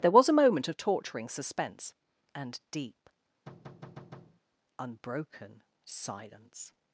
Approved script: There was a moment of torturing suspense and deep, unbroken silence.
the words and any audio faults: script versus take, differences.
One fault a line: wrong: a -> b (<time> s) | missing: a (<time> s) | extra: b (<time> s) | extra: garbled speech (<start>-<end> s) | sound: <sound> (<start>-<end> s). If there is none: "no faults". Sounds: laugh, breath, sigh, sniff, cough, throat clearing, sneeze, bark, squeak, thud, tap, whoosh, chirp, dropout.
sound: thud (3.5-4.4 s)